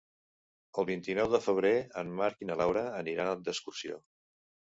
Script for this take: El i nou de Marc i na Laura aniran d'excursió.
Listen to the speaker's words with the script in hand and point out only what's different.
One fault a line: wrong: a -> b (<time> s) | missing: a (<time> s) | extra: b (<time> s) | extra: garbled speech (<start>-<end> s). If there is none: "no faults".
extra: vint (0.9 s)
extra: febrer en (1.5 s)